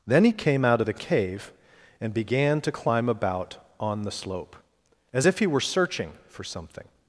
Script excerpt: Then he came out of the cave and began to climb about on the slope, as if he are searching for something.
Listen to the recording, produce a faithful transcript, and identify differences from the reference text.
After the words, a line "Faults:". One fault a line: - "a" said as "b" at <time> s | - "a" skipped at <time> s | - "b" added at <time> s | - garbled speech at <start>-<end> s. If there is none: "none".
Then he came out of the cave and began to climb about on the slope, as if he were searching for something.
Faults:
- "are" said as "were" at 5.5 s